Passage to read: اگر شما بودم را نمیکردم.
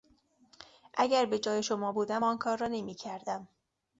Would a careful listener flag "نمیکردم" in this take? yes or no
no